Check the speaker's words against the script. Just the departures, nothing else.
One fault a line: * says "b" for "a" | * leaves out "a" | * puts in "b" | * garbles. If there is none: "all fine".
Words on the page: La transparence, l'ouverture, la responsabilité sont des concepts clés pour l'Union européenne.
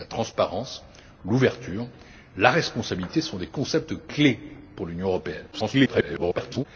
* garbles